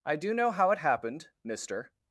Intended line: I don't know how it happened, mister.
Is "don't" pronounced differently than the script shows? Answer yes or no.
yes